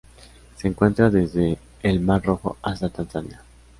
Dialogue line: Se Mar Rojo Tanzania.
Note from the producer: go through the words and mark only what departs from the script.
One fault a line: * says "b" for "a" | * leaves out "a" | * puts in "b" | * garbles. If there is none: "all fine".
* puts in "encuentra desde el"
* puts in "hasta"